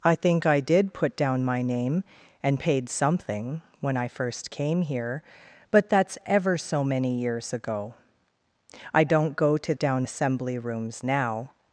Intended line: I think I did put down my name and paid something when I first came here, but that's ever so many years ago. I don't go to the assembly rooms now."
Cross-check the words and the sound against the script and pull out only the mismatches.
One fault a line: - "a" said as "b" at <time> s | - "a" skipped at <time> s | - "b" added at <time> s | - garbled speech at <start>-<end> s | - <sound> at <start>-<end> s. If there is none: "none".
- "the" said as "down" at 9.8 s